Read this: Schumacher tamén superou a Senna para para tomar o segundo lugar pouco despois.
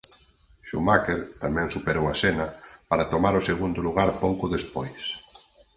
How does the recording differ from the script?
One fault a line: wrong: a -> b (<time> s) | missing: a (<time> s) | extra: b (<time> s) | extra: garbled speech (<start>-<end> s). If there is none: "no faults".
missing: para (3.1 s)